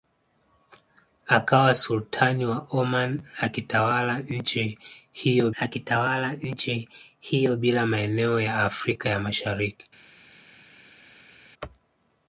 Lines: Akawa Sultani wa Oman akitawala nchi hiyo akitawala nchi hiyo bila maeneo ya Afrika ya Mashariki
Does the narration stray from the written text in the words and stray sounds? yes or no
no